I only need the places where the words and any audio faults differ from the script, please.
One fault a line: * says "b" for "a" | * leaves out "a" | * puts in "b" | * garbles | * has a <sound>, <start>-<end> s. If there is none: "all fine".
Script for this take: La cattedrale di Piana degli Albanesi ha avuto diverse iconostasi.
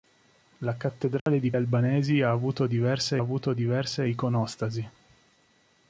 * has a dropout, 1.2-1.3 s
* says "Albanesi ha avuto diverse" for "Piana degli Albanesi ha"